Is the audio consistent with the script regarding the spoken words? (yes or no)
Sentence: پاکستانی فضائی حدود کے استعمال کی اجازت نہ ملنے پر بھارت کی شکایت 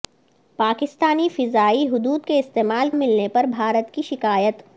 no